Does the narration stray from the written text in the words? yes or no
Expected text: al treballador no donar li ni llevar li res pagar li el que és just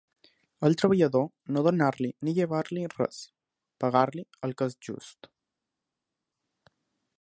no